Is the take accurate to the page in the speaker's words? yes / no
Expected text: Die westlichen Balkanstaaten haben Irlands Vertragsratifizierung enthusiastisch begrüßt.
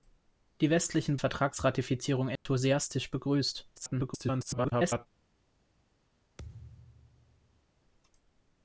no